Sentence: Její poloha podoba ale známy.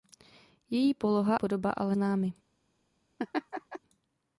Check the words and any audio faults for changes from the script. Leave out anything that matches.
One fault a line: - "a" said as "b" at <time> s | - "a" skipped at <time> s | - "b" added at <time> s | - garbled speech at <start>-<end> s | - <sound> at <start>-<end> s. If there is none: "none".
- laugh at 3.2-3.8 s